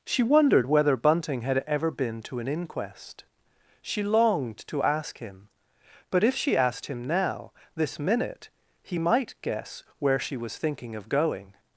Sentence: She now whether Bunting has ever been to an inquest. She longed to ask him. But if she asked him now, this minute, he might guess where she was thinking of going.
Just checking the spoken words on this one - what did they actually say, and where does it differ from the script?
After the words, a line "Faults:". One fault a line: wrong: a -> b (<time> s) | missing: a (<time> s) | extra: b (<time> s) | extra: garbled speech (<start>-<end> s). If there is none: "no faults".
She wondered whether Bunting had ever been to an inquest. She longed to ask him. But if she asked him now, this minute, he might guess where she was thinking of going.
Faults:
wrong: now -> wondered (0.2 s)
wrong: has -> had (1.4 s)